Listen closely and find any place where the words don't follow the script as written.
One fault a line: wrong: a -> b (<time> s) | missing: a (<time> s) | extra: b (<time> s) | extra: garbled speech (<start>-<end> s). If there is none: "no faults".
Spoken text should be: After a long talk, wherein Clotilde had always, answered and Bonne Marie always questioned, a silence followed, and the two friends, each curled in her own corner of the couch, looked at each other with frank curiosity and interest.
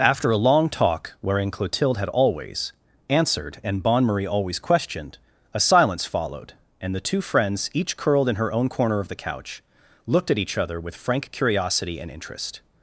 no faults